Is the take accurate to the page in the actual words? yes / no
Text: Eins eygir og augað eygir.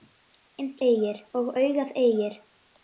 yes